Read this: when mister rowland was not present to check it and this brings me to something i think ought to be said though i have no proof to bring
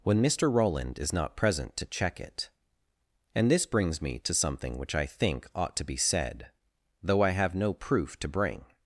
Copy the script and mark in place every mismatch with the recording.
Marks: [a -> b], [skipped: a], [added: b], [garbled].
when mister rowland [was -> is] not present to check it and this brings me to something [added: which] i think ought to be said though i have no proof to bring